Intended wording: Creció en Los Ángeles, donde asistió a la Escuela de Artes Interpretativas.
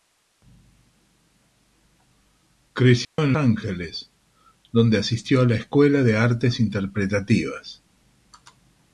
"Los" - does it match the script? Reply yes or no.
no